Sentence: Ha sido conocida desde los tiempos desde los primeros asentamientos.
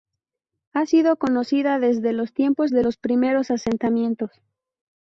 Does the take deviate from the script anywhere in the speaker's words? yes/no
yes